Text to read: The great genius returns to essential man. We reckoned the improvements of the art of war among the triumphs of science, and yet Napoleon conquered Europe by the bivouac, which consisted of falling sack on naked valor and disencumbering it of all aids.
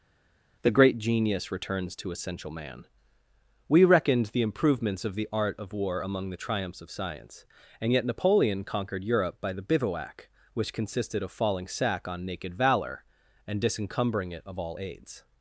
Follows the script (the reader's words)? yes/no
yes